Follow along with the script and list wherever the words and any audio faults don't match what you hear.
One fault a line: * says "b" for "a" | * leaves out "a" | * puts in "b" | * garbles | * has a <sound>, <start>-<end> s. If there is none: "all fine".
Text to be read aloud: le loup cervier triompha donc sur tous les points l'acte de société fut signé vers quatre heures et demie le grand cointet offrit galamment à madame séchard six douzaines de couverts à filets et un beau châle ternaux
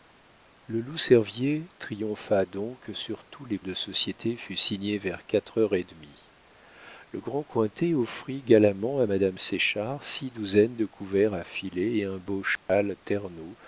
* leaves out "points l'acte"
* has a dropout, 12.6-12.7 s